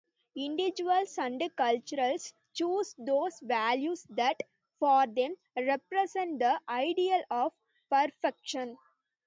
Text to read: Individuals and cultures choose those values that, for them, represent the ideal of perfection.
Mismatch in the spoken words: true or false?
false